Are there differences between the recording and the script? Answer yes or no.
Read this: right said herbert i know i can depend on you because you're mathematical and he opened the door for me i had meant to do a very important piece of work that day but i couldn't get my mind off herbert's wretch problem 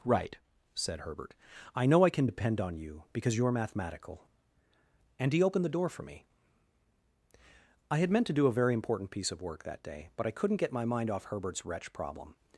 no